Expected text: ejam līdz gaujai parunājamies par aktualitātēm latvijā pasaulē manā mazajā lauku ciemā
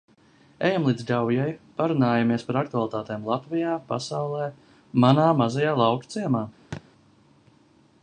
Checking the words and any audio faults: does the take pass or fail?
fail